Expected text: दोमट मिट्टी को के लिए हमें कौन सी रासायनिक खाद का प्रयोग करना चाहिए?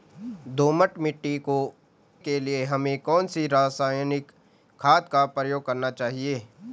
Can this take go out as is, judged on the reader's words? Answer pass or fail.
pass